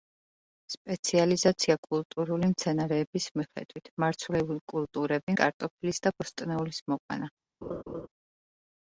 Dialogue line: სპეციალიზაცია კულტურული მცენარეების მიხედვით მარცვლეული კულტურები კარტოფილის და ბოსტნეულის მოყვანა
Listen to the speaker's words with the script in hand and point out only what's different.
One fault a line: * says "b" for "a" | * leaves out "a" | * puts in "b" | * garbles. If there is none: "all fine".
all fine